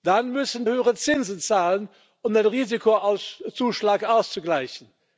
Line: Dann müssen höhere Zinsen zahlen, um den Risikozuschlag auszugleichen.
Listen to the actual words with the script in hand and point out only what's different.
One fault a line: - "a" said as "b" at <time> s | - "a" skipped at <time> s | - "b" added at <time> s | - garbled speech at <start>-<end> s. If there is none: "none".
none